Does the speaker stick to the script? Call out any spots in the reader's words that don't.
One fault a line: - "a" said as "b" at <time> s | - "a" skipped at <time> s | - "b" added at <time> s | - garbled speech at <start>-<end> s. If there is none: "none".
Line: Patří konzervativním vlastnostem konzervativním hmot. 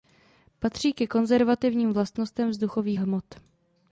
- "ke" added at 0.9 s
- "konzervativním" said as "vzduchových" at 2.5 s